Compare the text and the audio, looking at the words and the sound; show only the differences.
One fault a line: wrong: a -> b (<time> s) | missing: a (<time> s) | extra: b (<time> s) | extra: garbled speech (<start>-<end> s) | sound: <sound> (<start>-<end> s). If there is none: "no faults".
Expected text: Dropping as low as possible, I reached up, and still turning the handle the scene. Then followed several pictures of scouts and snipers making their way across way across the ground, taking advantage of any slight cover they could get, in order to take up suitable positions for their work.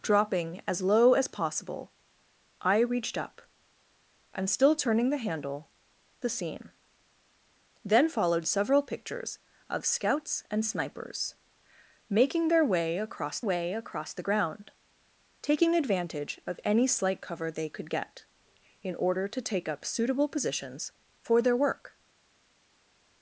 no faults